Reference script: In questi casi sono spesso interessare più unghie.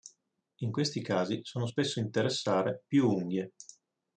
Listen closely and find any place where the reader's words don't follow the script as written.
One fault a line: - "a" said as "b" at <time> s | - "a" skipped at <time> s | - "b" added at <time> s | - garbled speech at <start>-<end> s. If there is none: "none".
none